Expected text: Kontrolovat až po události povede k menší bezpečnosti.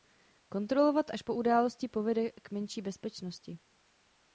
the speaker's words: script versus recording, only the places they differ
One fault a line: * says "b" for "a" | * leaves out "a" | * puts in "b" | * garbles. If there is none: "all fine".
all fine